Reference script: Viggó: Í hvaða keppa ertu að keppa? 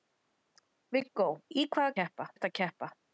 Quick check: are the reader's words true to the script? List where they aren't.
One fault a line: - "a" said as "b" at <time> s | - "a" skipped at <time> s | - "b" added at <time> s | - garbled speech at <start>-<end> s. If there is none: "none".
none